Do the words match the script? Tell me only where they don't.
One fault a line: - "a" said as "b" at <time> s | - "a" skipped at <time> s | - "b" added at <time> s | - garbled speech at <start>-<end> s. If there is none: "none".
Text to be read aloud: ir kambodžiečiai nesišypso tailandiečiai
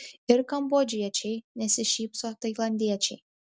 none